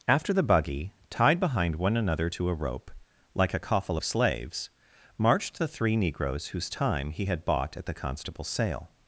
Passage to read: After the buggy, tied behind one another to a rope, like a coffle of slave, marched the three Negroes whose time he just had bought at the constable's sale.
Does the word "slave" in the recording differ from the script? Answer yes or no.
yes